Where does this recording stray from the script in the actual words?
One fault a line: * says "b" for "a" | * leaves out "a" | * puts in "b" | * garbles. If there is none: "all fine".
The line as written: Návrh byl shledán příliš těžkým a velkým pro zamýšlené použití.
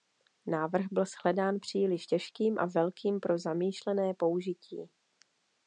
all fine